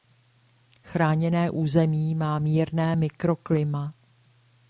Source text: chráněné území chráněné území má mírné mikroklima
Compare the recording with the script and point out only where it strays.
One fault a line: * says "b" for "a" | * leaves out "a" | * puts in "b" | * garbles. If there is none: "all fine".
* leaves out "chráněné území"